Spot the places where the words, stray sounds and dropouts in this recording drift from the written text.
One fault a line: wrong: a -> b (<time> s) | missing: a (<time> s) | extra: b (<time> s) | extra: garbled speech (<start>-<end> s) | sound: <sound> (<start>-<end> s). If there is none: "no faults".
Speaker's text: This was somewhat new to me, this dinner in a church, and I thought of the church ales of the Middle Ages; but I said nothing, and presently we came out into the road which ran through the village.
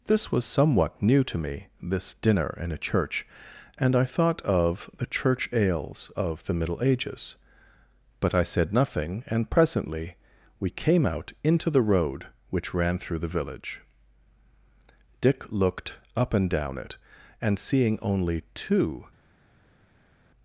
extra: Dick looked up and down it and seeing only two (15.2 s)